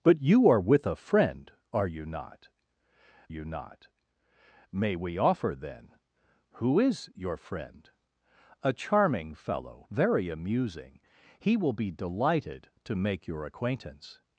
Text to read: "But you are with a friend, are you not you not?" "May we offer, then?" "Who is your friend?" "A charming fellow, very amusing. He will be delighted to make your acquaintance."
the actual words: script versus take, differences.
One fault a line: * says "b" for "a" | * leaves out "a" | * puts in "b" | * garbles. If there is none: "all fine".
all fine